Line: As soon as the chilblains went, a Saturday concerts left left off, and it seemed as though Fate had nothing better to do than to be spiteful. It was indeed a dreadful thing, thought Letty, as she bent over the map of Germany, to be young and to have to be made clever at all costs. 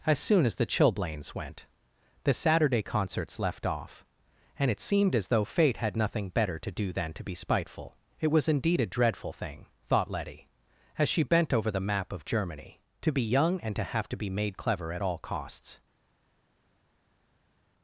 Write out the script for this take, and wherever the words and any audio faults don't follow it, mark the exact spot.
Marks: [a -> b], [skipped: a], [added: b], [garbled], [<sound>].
As soon as the chilblains went, [a -> the] Saturday concerts left [skipped: left] off, and it seemed as though Fate had nothing better to do than to be spiteful. It was indeed a dreadful thing, thought Letty, as she bent over the map of Germany, to be young and to have to be made clever at all costs.